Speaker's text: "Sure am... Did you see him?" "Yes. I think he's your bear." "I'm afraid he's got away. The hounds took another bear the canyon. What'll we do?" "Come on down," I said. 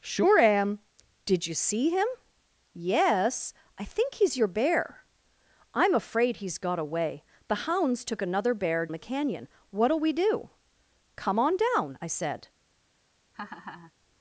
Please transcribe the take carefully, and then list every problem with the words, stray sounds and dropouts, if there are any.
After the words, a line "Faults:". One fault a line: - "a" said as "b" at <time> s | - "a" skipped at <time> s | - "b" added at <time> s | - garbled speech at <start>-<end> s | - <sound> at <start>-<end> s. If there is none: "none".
"Sure am... Did you see him?" "Yes. I think he's your bear." "I'm afraid he's got away. The hounds took another bear the canyon. What'll we do?" "Come on down," I said.
Faults:
- laugh at 13.3-13.9 s